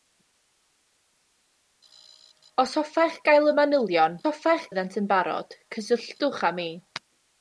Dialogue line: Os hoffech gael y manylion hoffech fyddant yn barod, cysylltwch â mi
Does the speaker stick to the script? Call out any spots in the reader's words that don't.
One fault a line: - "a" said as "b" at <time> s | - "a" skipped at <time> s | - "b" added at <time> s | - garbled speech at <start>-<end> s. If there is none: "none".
none